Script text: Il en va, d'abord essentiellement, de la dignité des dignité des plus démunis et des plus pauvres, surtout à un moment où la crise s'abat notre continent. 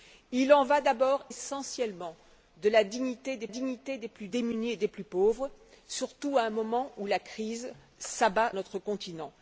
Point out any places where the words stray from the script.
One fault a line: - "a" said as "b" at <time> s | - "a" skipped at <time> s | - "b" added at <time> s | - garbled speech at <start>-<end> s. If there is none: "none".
none